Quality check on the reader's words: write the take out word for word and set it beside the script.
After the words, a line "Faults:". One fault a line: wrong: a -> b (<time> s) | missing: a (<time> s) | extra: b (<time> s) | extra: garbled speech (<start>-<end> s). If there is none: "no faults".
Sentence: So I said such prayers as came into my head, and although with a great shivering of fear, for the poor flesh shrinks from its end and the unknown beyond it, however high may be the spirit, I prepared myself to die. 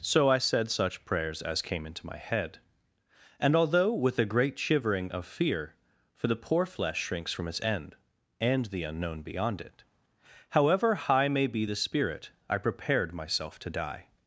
So I said such prayers as came into my head, and although with a great shivering of fear, for the poor flesh shrinks from its end and the unknown beyond it, however high may be the spirit, I prepared myself to die.
Faults:
no faults